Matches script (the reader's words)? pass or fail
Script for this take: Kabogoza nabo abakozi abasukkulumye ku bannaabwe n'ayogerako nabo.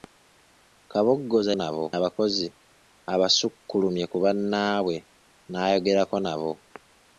pass